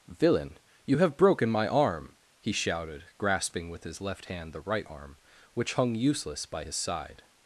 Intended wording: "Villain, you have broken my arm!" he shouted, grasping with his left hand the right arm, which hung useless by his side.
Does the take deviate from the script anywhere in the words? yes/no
no